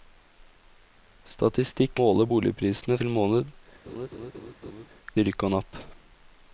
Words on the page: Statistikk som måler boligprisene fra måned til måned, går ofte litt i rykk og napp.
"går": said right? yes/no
no